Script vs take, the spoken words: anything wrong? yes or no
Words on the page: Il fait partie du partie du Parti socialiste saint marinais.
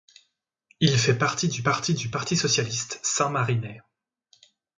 no